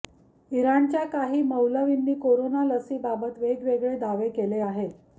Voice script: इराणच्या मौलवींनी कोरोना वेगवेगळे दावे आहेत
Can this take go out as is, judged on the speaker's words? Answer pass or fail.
fail